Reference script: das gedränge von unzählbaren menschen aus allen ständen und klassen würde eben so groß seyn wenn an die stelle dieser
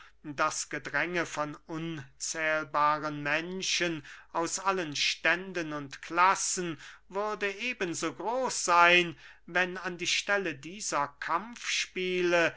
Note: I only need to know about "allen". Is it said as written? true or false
true